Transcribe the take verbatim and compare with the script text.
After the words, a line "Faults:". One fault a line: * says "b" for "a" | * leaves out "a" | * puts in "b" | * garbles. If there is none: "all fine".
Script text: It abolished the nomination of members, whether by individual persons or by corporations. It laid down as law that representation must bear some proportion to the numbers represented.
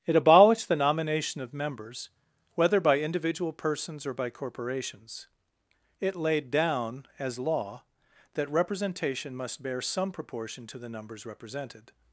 It abolished the nomination of members, whether by individual persons or by corporations. It laid down as law that representation must bear some proportion to the numbers represented.
Faults:
all fine